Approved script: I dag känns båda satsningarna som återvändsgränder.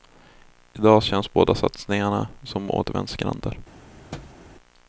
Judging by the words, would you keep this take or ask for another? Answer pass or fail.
pass